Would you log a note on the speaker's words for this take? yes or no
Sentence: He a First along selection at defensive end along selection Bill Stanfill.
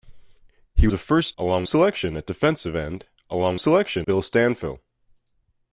no